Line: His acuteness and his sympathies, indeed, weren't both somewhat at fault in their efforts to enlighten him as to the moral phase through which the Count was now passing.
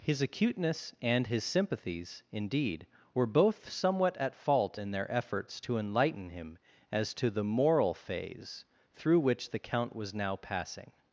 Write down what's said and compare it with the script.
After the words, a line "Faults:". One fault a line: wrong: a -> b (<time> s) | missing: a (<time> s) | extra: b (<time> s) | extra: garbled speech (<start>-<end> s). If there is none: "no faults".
His acuteness and his sympathies, indeed, were both somewhat at fault in their efforts to enlighten him as to the moral phase through which the Count was now passing.
Faults:
wrong: weren't -> were (3.1 s)